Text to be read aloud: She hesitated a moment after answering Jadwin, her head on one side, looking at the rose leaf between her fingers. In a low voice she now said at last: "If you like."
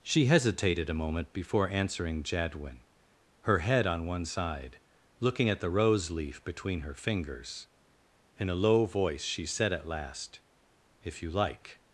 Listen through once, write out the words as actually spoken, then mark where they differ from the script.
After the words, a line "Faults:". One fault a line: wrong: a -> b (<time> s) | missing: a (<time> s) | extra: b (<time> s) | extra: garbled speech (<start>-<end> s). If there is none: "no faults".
She hesitated a moment before answering Jadwin, her head on one side, looking at the rose leaf between her fingers. In a low voice she said at last: "If you like."
Faults:
wrong: after -> before (1.3 s)
missing: now (9.4 s)